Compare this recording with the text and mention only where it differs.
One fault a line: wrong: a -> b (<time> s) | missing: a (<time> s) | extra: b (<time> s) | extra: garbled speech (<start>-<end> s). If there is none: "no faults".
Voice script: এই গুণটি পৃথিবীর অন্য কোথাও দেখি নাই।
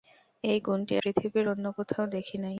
no faults